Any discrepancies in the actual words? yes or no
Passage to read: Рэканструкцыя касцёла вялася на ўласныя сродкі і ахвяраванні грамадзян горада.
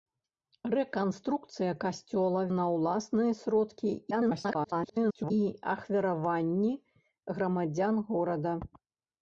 yes